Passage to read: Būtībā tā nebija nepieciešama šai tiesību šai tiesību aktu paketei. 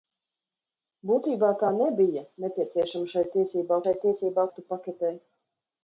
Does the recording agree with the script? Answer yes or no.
yes